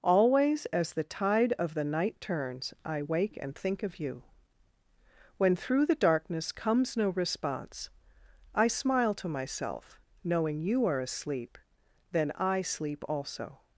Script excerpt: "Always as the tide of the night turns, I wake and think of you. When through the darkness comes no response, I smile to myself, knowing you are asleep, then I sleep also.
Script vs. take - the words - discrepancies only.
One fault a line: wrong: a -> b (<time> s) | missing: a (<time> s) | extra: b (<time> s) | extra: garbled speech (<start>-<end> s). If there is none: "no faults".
no faults